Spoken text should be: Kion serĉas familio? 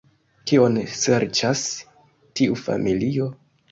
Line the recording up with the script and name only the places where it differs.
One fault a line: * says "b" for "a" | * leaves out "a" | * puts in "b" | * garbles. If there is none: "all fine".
* puts in "tiu"